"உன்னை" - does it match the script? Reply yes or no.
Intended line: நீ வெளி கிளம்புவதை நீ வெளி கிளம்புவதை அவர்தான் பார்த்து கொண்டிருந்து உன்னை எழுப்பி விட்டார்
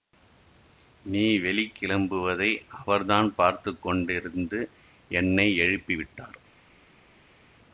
no